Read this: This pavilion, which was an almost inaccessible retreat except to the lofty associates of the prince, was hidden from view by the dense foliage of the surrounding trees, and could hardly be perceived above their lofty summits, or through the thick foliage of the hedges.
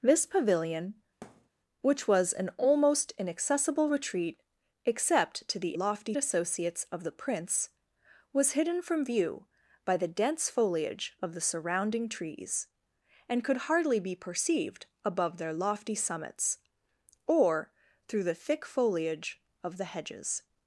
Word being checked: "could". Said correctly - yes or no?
yes